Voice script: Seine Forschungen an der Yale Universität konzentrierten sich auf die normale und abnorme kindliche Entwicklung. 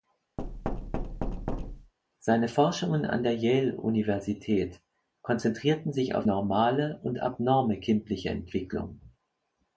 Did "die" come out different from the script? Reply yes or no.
yes